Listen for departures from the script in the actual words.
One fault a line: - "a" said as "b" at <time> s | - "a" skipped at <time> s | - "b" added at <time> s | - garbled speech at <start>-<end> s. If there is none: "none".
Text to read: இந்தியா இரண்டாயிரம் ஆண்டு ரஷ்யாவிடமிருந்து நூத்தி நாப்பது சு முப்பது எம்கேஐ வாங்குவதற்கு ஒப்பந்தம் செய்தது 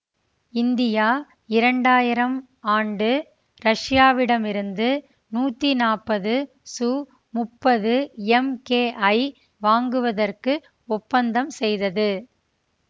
none